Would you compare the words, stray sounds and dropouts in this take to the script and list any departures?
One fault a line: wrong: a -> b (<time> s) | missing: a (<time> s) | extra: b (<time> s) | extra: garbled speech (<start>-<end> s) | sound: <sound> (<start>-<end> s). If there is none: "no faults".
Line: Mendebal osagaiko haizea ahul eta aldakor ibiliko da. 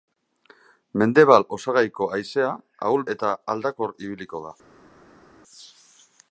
no faults